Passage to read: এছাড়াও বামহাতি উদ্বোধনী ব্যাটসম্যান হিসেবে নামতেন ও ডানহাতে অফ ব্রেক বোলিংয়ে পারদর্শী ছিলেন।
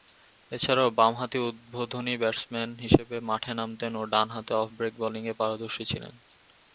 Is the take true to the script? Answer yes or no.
no